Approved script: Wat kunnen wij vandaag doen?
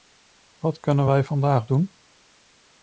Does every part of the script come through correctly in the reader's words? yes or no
yes